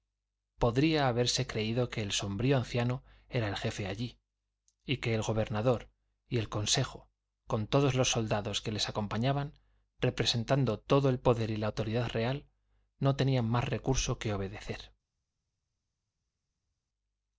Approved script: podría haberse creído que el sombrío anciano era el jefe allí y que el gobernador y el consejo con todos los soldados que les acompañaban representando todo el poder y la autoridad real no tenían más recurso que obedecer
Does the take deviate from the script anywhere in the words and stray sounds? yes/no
no